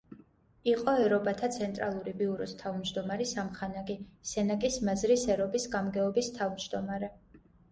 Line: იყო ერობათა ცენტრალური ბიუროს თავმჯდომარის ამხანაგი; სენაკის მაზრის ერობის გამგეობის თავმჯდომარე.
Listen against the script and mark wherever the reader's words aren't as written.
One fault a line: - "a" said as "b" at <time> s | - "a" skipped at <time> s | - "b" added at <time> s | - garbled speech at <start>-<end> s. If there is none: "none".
none